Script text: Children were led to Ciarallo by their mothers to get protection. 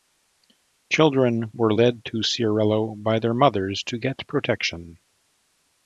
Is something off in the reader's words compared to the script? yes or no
no